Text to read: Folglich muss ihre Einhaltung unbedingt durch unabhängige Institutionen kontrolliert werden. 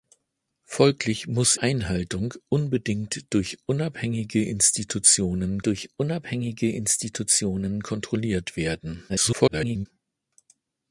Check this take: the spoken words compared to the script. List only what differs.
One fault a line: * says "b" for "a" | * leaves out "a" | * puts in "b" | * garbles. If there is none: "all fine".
* leaves out "ihre"
* puts in "durch unabhängige Institutionen"
* garbles